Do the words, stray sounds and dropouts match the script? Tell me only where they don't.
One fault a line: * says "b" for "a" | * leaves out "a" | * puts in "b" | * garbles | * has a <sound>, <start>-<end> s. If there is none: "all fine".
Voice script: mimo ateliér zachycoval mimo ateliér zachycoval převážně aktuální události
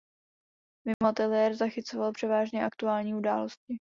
* has a dropout, 0.9-1.0 s
* leaves out "mimo ateliér zachycoval"